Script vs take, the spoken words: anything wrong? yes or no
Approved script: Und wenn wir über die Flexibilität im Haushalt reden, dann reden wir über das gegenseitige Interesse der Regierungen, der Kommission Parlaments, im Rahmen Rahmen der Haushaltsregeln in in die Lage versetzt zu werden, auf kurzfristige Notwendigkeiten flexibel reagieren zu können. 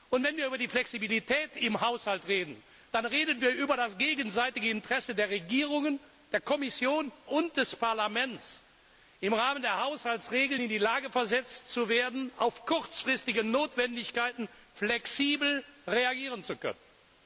yes